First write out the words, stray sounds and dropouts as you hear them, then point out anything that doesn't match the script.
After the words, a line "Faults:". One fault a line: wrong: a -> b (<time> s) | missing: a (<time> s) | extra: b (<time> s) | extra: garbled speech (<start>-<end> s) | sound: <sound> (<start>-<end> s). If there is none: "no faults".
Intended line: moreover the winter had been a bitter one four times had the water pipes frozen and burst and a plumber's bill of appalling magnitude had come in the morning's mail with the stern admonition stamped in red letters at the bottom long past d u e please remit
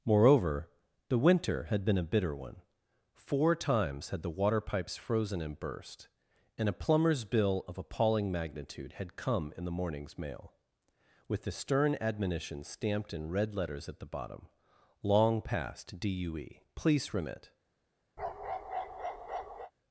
moreover the winter had been a bitter one four times had the water pipes frozen and burst and a plumber's bill of appalling magnitude had come in the morning's mail with the stern admonition stamped in red letters at the bottom long past d u e please remit
Faults:
sound: bark (18.2-19.7 s)